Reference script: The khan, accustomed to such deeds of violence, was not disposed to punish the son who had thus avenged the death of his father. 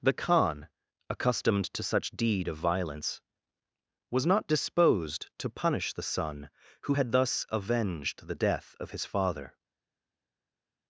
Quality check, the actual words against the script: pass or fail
fail